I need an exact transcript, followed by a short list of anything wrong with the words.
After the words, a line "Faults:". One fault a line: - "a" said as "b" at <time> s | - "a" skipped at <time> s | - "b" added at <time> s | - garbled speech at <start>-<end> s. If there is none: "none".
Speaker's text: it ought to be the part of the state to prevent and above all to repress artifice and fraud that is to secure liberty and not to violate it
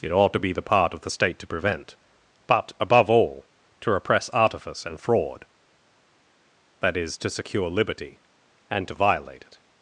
it ought to be the part of the state to prevent but above all to repress artifice and fraud that is to secure liberty and to violate it
Faults:
- "and" said as "but" at 2.5 s
- "not" skipped at 8.9 s